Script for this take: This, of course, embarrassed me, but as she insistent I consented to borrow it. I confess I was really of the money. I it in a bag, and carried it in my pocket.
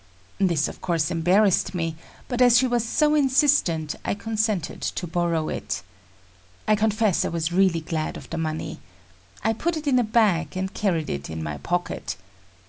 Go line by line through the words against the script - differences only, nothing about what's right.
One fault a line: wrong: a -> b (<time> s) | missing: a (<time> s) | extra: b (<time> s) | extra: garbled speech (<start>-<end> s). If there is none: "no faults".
extra: was so (2.6 s)
extra: glad (7.8 s)
extra: put (9.5 s)